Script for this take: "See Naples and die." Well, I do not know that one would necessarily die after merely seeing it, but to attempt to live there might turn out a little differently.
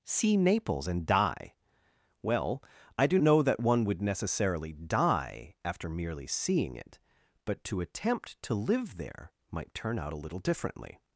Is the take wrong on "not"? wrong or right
wrong